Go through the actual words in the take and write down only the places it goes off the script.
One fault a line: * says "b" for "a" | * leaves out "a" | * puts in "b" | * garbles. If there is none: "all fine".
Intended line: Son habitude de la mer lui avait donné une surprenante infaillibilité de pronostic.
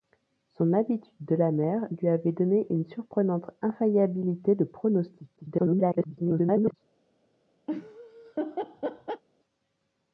* garbles